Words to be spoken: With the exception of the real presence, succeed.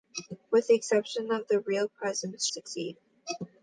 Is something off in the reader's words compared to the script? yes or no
no